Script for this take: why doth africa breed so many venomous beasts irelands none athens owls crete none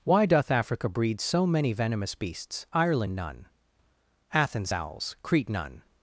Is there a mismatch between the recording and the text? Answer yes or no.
yes